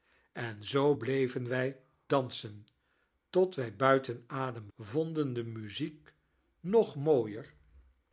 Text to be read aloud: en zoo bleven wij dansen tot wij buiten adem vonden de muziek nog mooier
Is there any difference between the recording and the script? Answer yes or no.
no